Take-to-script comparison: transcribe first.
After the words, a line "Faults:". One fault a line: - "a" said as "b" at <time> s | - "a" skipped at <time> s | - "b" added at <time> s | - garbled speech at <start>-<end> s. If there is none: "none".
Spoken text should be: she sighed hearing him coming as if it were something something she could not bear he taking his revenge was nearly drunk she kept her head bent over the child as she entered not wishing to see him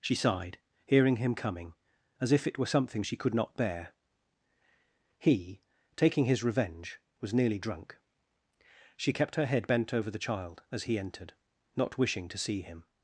she sighed hearing him coming as if it were something she could not bear he taking his revenge was nearly drunk she kept her head bent over the child as he entered not wishing to see him
Faults:
- "something" skipped at 3.0 s
- "she" said as "he" at 10.8 s